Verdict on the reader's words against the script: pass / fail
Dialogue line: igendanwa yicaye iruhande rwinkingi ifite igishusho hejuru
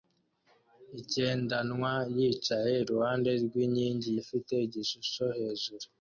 pass